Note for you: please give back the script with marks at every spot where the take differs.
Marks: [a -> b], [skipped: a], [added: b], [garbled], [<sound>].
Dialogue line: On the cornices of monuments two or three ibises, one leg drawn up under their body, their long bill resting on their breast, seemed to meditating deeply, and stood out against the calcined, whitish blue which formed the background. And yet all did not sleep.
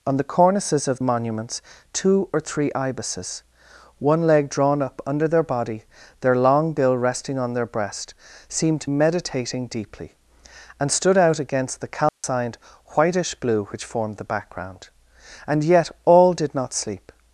On the cornices of monuments two or three ibises, one leg drawn up under their body, their long bill resting on their breast, seemed to meditating deeply, and stood out against the calcined, [dropout] whitish blue which formed the background. And yet all did not sleep.